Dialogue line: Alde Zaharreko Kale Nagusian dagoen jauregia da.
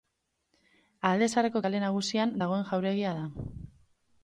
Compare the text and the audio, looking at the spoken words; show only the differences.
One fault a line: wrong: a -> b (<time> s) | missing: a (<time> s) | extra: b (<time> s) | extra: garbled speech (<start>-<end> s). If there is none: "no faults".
no faults